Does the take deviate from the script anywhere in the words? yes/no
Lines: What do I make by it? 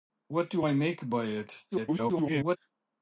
yes